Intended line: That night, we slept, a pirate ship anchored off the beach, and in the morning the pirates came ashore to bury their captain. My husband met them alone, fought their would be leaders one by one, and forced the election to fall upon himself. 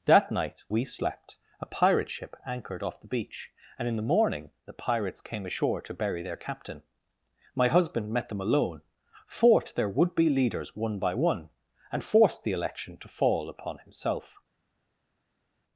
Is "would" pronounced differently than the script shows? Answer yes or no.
no